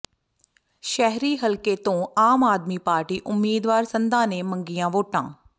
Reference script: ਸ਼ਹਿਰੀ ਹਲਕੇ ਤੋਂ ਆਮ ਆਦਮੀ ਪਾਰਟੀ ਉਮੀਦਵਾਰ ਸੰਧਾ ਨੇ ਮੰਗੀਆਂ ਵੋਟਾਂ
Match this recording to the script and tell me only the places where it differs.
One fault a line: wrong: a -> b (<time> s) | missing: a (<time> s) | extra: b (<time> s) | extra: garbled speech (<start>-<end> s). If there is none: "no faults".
no faults